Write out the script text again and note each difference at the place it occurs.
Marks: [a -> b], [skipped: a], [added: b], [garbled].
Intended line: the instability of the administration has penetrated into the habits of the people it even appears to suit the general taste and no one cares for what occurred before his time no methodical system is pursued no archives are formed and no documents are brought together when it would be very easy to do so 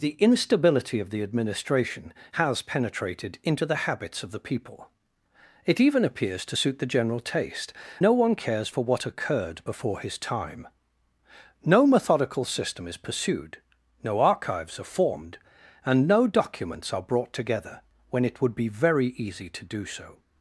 the instability of the administration has penetrated into the habits of the people it even appears to suit the general taste [skipped: and] no one cares for what occurred before his time no methodical system is pursued no archives are formed and no documents are brought together when it would be very easy to do so